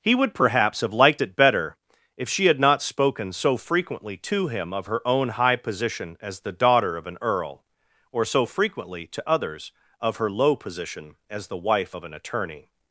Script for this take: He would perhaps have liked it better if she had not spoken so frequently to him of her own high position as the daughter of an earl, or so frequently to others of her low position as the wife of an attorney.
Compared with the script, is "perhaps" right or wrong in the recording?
right